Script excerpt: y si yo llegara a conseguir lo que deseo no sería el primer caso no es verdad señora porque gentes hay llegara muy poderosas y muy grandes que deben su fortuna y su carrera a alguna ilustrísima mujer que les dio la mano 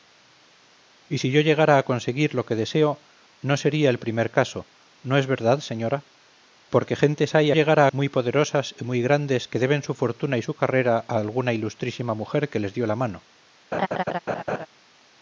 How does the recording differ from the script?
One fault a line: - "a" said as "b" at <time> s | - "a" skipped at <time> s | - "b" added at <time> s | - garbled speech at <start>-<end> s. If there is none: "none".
none